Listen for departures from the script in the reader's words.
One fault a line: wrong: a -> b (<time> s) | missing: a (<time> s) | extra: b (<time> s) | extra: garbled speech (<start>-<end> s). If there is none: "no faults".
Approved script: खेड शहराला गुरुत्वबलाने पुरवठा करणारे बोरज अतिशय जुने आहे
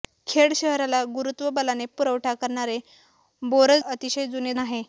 no faults